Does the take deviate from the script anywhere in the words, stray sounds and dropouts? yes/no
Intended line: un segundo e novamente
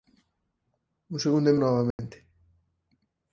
yes